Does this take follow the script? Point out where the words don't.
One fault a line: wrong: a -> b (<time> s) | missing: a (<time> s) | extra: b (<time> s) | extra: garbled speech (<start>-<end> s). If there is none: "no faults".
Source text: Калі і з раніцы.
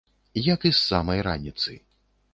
wrong: Калі -> Як (0.5 s)
extra: самай (0.9 s)